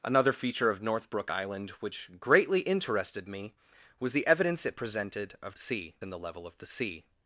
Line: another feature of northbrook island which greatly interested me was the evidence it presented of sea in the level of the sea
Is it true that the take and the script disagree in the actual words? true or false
false